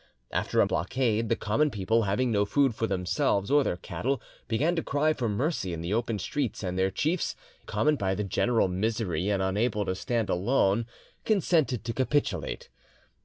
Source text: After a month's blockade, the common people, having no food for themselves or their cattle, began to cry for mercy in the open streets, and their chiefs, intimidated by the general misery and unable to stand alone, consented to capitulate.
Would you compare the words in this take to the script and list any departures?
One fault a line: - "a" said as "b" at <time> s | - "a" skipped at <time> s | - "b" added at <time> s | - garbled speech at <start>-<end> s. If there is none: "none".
- "month's" skipped at 0.7 s
- "intimidated" said as "common" at 7.6 s